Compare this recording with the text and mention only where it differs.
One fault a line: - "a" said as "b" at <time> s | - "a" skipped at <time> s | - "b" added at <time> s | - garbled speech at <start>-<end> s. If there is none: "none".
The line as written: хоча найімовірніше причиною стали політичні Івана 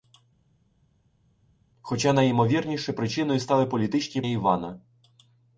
none